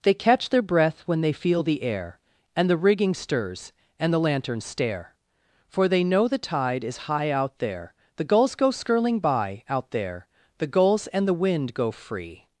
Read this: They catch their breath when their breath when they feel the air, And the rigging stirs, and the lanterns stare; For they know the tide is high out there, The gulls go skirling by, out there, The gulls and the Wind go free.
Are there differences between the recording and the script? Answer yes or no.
yes